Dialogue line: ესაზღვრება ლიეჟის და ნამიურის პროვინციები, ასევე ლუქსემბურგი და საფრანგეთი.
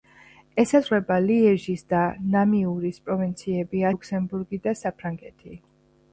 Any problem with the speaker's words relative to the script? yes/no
yes